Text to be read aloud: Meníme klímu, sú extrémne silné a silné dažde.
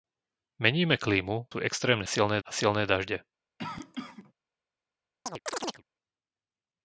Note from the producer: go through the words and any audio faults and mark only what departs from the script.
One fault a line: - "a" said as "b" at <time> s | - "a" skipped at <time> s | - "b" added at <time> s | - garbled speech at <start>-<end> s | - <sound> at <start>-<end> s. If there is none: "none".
- cough at 3.6-4.3 s
- chirp at 5.3-5.8 s